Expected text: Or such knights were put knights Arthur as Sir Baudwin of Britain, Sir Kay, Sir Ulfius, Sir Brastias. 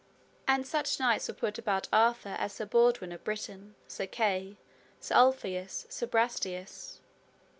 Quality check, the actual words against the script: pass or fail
fail